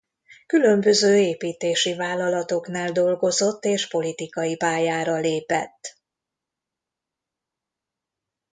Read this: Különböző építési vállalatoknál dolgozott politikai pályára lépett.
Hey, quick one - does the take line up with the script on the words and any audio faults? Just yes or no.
no